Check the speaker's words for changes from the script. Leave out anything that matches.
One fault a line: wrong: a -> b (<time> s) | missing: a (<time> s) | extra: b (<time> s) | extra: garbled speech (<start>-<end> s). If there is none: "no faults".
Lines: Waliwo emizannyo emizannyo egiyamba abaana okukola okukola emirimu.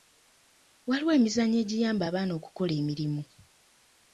missing: emizannyo (1.6 s)
missing: okukola (2.7 s)